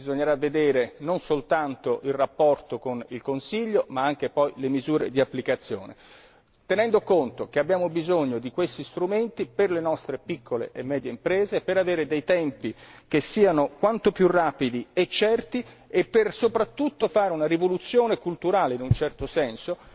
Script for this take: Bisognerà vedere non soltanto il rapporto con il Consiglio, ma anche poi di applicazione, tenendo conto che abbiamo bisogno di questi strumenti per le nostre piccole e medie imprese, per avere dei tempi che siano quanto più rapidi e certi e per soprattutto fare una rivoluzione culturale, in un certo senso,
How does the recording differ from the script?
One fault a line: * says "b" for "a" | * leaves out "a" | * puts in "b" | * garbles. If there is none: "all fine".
* puts in "le misure"